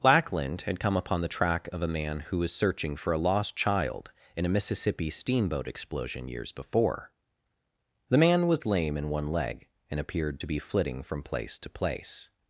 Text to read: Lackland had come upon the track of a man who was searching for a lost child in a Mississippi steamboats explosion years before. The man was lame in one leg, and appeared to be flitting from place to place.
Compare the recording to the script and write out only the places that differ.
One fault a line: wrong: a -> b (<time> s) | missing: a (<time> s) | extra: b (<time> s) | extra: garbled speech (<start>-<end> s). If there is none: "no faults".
wrong: steamboats -> steamboat (5.1 s)